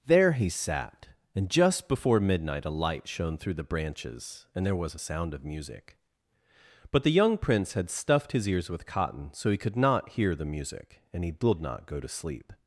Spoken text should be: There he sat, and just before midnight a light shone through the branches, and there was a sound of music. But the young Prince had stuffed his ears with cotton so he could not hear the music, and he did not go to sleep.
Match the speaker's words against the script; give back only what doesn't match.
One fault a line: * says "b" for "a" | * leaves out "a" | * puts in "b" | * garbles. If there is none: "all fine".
all fine